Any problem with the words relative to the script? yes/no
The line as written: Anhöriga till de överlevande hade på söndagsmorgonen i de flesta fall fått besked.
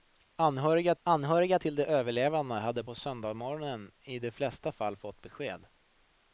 yes